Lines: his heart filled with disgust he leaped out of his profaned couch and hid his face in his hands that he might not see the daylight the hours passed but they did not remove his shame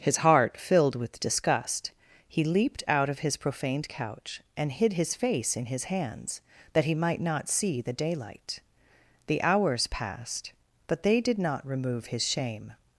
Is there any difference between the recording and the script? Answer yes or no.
no